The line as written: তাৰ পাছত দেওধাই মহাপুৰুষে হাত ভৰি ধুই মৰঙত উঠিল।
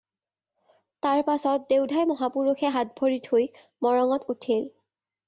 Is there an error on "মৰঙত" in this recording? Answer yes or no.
no